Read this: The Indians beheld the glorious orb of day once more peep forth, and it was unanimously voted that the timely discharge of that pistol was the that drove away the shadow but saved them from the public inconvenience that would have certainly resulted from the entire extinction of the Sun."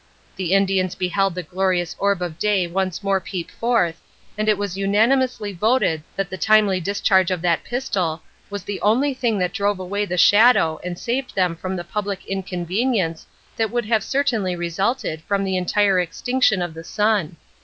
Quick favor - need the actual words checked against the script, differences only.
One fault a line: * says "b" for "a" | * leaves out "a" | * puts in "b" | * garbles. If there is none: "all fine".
* puts in "only thing"
* says "and" for "but"